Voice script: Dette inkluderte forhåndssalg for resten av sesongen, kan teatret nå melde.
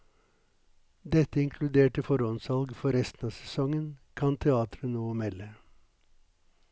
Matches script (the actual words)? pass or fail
pass